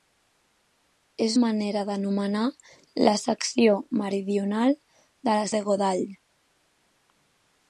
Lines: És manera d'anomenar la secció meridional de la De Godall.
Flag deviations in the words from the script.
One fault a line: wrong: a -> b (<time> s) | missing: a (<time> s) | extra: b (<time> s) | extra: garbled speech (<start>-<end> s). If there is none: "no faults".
no faults